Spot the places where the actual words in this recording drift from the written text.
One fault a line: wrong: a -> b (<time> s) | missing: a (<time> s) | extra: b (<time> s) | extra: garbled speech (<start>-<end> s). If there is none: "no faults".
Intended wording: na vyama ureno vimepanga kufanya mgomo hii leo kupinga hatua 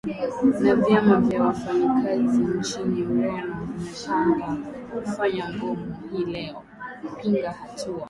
extra: vya wafanyakazi nchini (1.2 s)